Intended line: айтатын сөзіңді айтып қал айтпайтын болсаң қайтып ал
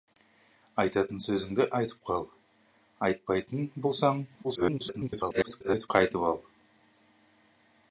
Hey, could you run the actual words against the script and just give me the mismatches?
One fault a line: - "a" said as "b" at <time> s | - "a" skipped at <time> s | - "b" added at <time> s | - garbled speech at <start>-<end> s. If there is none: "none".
- garbled speech at 4.4-5.9 s